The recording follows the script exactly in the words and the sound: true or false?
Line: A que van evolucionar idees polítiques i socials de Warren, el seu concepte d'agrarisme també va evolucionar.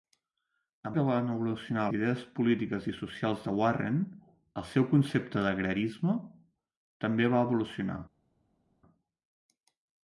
true